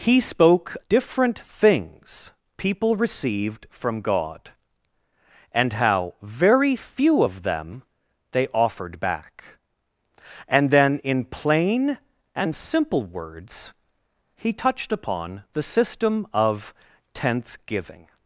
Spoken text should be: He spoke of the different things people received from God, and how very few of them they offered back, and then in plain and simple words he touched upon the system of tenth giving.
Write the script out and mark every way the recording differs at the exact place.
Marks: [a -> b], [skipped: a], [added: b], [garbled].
He spoke [skipped: of the] different things people received from God, and how very few of them they offered back, and then in plain and simple words he touched upon the system of tenth giving.